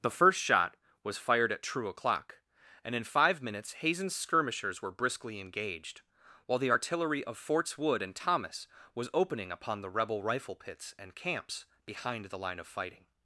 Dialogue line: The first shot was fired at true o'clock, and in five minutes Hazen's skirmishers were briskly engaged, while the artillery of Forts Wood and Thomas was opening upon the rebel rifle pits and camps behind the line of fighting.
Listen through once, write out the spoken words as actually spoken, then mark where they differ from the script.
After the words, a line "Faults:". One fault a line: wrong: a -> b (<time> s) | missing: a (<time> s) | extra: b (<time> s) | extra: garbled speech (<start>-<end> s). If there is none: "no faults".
The first shot was fired at true o'clock, and in five minutes Hazen's skirmishers were briskly engaged, while the artillery of Forts Wood and Thomas was opening upon the rebel rifle pits and camps behind the line of fighting.
Faults:
no faults